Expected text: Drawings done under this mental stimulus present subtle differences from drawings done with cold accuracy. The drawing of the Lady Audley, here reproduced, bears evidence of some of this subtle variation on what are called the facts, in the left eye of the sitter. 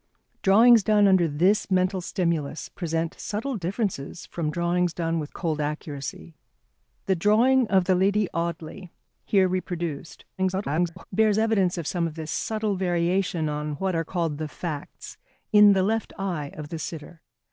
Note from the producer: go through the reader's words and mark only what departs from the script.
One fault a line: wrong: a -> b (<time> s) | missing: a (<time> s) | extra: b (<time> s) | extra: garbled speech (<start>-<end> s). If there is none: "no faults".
extra: garbled speech (10.4-11.1 s)